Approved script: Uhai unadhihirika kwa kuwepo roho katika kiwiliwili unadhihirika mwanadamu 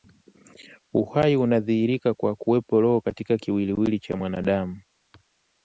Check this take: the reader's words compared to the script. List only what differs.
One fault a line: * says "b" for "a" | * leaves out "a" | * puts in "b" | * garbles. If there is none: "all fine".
* says "cha" for "unadhihirika"